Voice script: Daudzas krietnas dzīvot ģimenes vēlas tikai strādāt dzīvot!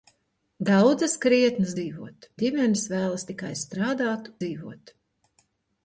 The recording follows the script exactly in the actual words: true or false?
true